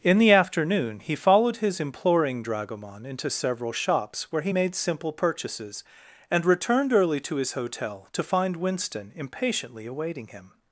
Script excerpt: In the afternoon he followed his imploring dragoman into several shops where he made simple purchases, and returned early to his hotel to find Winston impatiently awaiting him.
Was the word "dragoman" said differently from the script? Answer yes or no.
no